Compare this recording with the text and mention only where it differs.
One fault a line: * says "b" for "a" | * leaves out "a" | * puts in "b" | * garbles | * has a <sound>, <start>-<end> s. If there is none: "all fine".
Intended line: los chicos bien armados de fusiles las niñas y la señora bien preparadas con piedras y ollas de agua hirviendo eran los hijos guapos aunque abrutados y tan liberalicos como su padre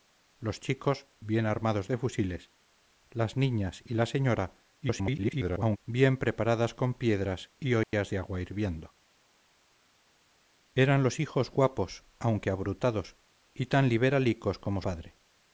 * garbles
* has a dropout, 7.8-7.9 s
* leaves out "su"